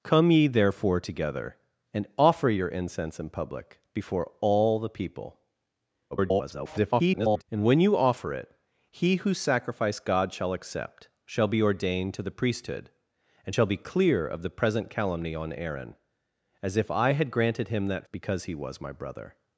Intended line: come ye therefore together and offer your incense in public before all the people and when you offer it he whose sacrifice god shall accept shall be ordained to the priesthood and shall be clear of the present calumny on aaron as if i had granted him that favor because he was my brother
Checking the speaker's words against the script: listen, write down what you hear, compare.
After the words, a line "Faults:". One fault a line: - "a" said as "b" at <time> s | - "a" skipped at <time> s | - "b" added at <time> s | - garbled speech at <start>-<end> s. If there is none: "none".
come ye therefore together and offer your incense in public before all the people [garbled] and when you offer it he whose sacrifice god shall accept shall be ordained to the priesthood and shall be clear of the present calumny on aaron as if i had granted him that because he was my brother
Faults:
- garbled speech at 6.1-7.4 s
- "favor" skipped at 18.1 s